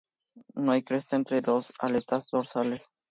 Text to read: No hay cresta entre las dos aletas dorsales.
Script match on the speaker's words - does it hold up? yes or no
yes